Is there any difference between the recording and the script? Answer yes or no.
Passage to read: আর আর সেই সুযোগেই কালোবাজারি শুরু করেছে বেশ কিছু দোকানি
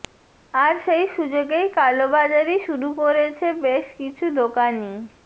yes